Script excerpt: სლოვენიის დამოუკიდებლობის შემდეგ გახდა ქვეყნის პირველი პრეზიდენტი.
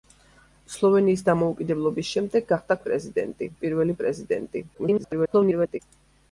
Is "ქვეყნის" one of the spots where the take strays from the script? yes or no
yes